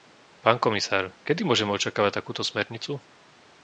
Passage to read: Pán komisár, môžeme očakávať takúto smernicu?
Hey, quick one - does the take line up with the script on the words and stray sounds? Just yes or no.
no